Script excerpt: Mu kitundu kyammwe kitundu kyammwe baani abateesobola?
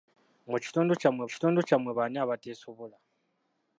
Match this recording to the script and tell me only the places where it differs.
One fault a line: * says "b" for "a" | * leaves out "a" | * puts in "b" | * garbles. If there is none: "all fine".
all fine